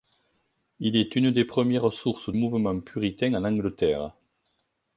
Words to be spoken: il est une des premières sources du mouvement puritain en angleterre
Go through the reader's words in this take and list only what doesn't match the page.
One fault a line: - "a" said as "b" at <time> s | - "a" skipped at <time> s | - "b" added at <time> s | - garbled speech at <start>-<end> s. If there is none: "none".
- "du" skipped at 2.3 s